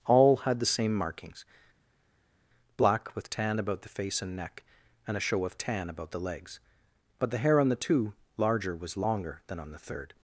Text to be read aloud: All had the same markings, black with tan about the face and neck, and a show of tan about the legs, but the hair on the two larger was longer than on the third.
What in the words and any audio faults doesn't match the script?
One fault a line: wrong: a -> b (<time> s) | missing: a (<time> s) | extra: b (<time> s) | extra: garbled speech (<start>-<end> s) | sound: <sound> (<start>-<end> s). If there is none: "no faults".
no faults